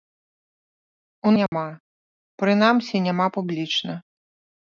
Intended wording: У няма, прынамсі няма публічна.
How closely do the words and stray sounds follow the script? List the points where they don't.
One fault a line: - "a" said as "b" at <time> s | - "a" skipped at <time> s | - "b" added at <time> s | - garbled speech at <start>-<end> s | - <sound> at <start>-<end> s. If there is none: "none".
- dropout at 1.5-1.5 s